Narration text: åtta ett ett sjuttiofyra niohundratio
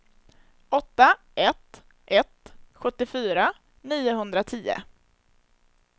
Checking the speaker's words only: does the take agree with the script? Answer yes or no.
yes